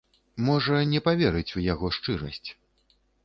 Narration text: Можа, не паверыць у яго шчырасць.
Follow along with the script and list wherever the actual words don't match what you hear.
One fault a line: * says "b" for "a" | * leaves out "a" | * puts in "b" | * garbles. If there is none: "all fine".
all fine